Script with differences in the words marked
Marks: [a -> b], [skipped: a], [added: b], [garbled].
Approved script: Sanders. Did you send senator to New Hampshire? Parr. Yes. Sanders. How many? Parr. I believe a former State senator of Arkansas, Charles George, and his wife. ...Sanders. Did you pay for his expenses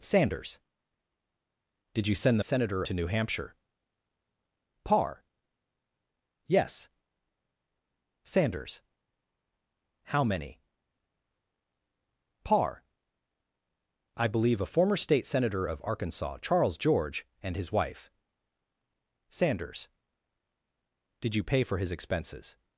Sanders. Did you send senator to New Hampshire? Parr. Yes. Sanders. How many? Parr. I believe a former State senator of Arkansas, Charles George, and his wife. ...Sanders. Did you pay for his expenses